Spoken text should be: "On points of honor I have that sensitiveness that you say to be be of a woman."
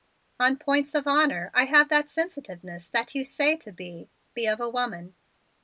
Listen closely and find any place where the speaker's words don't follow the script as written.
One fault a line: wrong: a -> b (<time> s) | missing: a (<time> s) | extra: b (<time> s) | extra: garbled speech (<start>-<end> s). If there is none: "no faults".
no faults